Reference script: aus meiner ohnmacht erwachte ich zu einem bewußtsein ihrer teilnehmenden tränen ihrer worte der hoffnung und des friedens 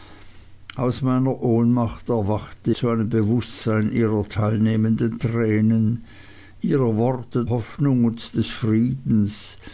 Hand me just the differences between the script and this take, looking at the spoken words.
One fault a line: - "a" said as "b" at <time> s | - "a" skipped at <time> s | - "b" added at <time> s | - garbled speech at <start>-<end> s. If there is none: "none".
- "ich" skipped at 2.7 s
- "der" skipped at 7.4 s